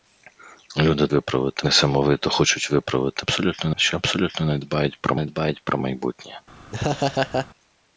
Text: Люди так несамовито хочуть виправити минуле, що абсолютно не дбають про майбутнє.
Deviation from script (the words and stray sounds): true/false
true